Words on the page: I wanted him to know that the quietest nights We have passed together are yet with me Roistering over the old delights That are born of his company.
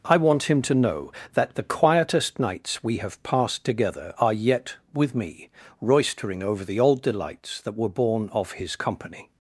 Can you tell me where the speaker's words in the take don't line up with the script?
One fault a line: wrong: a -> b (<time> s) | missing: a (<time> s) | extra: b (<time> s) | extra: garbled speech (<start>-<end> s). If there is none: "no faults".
wrong: wanted -> want (0.2 s)
wrong: are -> were (7.7 s)